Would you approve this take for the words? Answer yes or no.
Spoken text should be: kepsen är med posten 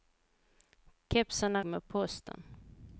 yes